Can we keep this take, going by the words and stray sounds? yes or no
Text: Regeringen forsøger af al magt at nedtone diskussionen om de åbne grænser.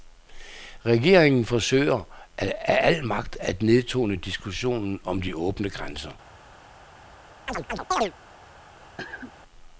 no